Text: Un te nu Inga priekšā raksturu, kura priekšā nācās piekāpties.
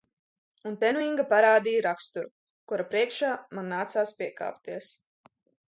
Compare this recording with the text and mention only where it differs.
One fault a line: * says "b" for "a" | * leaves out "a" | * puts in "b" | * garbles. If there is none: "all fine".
* says "parādīja" for "priekšā"
* puts in "man"